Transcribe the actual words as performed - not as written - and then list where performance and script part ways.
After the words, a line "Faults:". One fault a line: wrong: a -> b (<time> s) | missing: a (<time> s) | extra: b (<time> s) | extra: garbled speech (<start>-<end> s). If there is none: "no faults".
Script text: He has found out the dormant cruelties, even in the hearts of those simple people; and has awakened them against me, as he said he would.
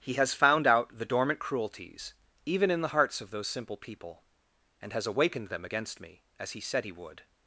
He has found out the dormant cruelties, even in the hearts of those simple people; and has awakened them against me, as he said he would.
Faults:
no faults